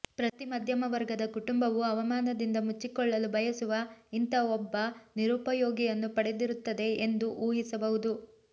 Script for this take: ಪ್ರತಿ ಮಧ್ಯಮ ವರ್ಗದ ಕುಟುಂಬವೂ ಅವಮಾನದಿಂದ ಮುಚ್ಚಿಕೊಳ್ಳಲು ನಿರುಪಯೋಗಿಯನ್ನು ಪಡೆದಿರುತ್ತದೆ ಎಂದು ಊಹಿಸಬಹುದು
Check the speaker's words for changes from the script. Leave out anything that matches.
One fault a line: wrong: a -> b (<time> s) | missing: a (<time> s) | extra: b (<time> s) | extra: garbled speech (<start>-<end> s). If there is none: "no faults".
extra: ಬಯಸುವ ಇಂಥ ಒಬ್ಬ (3.3 s)